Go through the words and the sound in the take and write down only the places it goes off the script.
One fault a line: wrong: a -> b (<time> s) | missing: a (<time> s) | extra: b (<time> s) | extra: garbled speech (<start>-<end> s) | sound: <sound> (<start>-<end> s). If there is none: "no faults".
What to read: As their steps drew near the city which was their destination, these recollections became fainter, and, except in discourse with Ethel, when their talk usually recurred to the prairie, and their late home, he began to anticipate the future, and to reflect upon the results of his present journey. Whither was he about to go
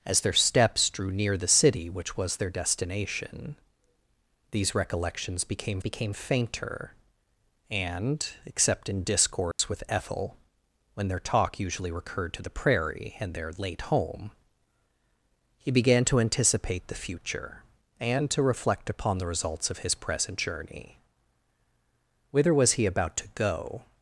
extra: became (5.8 s)
sound: dropout (9.5-9.6 s)